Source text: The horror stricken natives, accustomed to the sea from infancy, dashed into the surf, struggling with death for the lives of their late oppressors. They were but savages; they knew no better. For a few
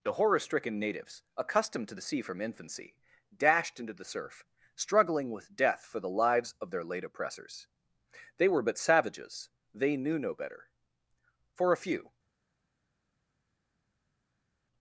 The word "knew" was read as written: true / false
true